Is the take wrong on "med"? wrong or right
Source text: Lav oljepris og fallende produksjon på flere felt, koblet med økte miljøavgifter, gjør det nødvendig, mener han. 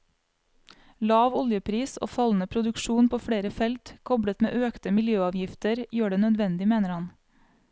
right